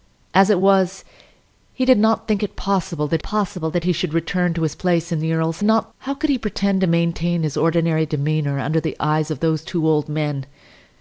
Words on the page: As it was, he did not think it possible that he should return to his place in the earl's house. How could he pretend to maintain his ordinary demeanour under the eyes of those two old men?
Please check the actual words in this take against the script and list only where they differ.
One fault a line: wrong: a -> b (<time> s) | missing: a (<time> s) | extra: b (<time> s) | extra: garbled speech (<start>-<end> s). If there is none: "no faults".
extra: possible that (3.2 s)
wrong: house -> not (5.6 s)